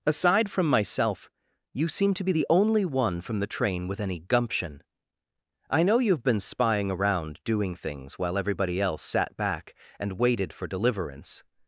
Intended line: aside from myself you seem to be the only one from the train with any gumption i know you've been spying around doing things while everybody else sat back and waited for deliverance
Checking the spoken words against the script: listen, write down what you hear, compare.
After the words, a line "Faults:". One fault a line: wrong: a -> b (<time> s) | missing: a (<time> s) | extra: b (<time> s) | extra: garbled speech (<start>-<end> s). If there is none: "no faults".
aside from myself you seem to be the only one from the train with any gumption i know you've been spying around doing things while everybody else sat back and waited for deliverance
Faults:
no faults